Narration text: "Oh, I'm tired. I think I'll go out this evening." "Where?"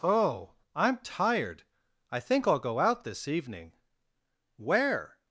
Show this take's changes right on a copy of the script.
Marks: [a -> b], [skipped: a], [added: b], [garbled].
"Oh, I'm tired. I think I'll go out this evening." "Where?"